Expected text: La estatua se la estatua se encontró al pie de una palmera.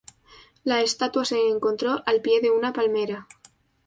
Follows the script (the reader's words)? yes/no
no